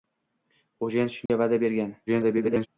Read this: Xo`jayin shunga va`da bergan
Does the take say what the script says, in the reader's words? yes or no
no